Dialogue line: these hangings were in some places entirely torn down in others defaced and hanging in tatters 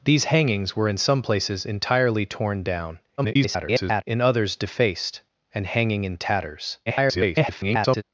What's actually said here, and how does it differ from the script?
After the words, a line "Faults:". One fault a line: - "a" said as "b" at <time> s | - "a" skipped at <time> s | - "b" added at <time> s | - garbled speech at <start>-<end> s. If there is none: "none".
these hangings were in some places entirely torn down [garbled] in others defaced and hanging in tatters [garbled]
Faults:
- garbled speech at 3.2-4.0 s
- garbled speech at 6.9-8.0 s